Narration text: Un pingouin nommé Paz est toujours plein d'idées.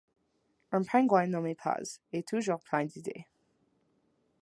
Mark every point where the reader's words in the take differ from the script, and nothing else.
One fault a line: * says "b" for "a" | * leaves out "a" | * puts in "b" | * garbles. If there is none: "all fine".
all fine